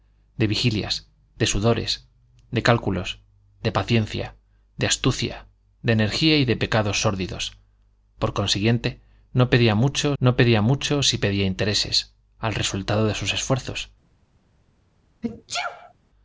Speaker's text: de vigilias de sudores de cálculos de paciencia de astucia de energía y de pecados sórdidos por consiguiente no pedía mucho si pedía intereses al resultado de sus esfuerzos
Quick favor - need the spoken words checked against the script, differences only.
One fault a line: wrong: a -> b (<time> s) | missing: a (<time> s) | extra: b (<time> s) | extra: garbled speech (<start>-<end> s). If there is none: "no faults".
extra: no pedía mucho (10.2 s)